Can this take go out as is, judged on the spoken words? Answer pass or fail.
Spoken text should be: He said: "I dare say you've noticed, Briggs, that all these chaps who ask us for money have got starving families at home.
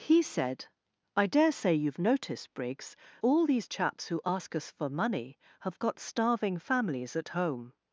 fail